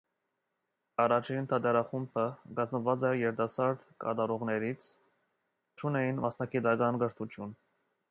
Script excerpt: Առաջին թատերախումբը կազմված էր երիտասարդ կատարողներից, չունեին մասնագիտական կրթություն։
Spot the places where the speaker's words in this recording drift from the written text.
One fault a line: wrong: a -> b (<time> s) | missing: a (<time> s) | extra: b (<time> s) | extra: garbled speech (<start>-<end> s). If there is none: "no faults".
no faults